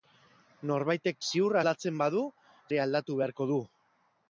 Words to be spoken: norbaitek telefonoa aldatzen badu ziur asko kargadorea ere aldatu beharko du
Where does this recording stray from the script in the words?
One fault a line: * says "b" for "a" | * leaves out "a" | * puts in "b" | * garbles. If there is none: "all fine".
* says "ziur" for "telefonoa"
* leaves out "ziur asko kargadorea"